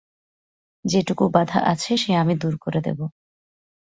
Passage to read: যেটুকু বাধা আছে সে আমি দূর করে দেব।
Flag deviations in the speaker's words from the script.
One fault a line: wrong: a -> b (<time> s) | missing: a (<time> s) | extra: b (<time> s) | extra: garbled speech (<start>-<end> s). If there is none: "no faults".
no faults